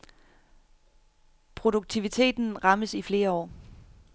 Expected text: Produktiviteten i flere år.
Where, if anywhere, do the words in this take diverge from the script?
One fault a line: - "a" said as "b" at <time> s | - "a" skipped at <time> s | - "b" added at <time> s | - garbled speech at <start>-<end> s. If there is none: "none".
- "rammes" added at 2.6 s